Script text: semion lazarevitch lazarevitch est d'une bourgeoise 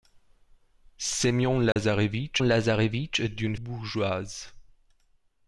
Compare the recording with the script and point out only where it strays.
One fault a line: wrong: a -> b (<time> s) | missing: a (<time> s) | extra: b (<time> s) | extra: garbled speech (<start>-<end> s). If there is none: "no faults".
no faults